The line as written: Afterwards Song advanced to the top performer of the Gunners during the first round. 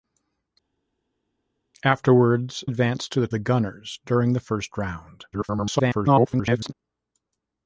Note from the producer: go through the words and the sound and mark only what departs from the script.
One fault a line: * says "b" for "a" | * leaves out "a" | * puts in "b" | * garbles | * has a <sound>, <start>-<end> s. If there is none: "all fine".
* leaves out "Song"
* leaves out "top performer of"
* garbles